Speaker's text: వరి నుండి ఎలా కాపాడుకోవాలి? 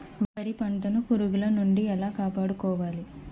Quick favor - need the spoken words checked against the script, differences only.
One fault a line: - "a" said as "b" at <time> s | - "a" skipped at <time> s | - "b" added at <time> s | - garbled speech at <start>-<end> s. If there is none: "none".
- "పంటను పురుగుల" added at 0.5 s